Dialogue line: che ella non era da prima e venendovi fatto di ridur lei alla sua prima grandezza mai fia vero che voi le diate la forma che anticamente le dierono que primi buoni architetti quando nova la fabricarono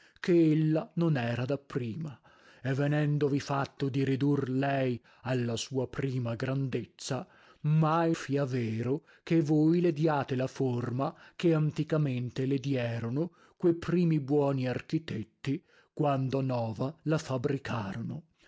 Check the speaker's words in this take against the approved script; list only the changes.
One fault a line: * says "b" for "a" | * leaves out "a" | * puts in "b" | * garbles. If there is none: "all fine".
all fine